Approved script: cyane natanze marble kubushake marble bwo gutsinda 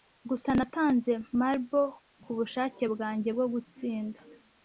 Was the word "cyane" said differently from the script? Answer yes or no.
yes